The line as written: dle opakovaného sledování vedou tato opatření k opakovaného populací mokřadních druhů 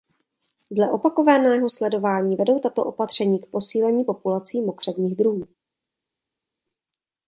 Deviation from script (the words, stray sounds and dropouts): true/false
true